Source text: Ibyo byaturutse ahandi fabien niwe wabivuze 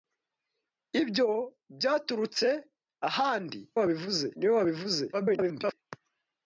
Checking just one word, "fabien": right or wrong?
wrong